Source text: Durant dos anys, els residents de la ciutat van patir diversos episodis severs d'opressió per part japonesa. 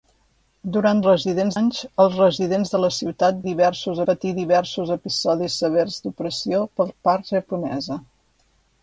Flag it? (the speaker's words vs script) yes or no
yes